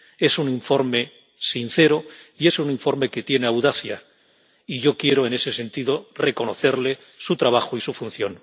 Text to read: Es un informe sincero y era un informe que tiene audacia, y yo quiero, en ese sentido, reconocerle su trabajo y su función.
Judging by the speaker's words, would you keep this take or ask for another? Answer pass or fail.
fail